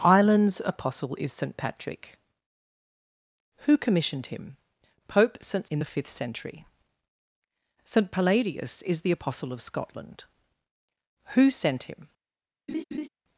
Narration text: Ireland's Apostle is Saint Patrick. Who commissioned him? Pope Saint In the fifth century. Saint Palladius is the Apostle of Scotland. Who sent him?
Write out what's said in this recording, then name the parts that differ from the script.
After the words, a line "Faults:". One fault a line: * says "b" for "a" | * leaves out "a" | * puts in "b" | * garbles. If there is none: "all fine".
Ireland's Apostle is Saint Patrick. Who commissioned him? Pope Saint In the fifth century. Saint Palladius is the Apostle of Scotland. Who sent him?
Faults:
all fine